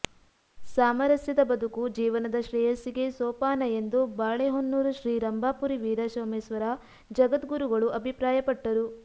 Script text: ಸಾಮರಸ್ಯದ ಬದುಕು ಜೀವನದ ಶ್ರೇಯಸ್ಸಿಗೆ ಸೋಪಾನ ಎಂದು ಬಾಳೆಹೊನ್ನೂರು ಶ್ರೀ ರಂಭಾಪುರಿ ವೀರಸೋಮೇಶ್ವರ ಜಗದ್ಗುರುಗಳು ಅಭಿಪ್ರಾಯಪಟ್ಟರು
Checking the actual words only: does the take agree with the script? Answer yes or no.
yes